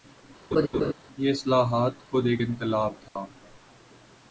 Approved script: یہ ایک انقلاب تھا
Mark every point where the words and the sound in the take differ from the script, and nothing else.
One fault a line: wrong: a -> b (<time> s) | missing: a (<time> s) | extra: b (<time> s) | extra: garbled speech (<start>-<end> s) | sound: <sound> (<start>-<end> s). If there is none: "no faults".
sound: laugh (0.5-0.9 s)
extra: اصلاحات خود (1.3 s)
sound: dropout (3.1-3.2 s)